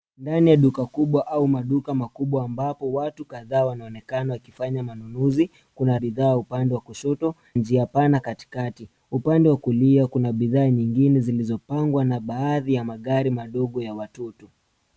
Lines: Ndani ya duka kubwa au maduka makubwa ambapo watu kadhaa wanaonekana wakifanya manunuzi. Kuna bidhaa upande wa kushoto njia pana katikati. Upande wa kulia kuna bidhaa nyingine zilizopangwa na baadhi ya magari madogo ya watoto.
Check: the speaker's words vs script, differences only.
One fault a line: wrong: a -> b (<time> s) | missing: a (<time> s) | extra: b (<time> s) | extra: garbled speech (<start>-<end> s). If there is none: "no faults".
no faults